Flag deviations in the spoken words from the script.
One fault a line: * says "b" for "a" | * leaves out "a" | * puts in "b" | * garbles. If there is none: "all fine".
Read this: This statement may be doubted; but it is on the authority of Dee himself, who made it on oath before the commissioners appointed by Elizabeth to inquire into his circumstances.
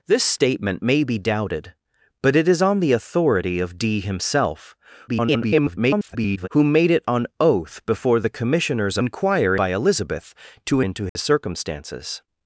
* garbles
* says "inquire" for "appointed"
* leaves out "inquire"